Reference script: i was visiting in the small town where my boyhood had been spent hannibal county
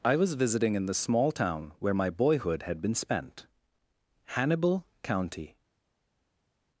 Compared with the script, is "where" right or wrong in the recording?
right